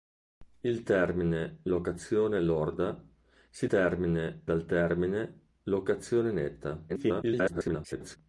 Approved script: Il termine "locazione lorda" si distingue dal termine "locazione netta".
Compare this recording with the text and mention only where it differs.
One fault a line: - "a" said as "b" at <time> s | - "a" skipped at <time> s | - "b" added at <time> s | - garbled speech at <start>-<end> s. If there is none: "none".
- "distingue" said as "termine" at 3.6 s
- garbled speech at 6.9-8.2 s